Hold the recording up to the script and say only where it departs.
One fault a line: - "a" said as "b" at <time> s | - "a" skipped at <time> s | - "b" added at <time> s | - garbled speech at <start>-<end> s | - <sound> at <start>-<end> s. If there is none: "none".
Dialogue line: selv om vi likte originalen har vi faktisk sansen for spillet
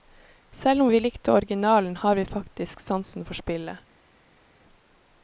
none